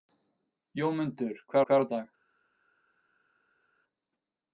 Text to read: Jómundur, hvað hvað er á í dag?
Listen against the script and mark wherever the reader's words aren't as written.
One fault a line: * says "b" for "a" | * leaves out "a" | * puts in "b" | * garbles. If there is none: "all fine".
all fine